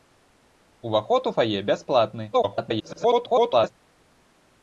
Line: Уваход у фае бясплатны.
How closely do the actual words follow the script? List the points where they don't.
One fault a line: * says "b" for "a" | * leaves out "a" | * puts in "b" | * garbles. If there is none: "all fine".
* garbles